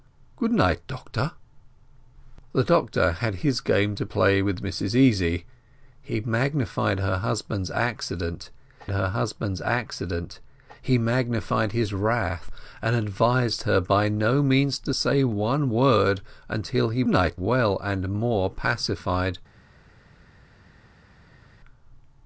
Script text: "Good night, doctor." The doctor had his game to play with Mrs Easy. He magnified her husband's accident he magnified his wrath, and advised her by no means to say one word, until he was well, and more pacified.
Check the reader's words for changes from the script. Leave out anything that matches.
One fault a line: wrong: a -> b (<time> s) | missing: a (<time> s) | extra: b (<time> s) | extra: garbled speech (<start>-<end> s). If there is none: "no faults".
extra: her husband's accident (8.9 s)
wrong: was -> night (17.1 s)